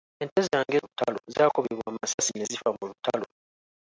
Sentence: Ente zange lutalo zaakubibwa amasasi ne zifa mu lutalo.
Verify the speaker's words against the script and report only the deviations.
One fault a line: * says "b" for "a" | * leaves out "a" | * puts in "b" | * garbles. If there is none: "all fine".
all fine